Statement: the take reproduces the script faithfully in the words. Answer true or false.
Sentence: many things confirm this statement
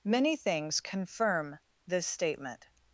true